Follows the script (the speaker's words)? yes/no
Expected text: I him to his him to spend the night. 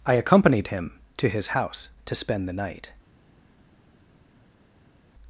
no